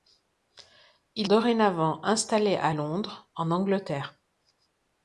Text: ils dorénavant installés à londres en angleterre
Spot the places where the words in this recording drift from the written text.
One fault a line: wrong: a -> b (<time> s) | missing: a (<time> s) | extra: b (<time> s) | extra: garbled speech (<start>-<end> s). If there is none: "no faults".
no faults